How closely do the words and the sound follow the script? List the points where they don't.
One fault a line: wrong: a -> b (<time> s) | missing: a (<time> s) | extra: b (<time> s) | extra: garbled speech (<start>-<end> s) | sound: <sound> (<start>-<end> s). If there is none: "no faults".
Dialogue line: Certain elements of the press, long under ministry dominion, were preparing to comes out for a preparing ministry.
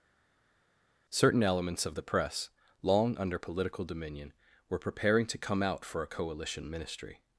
wrong: ministry -> political (3.4 s)
wrong: comes -> come (5.4 s)
wrong: preparing -> coalition (6.1 s)